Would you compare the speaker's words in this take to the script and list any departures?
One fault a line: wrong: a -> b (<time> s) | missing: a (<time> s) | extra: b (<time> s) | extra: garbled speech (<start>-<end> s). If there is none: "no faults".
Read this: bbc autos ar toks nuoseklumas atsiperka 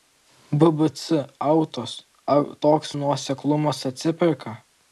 no faults